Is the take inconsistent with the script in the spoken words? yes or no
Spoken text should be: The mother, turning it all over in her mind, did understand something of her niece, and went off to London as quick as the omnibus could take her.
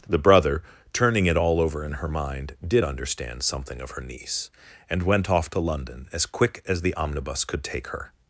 yes